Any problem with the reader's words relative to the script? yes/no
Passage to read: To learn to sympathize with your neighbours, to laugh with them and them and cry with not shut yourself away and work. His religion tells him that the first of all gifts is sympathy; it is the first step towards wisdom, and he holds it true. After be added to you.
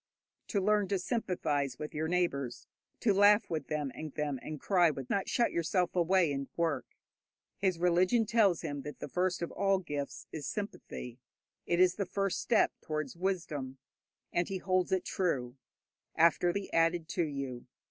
no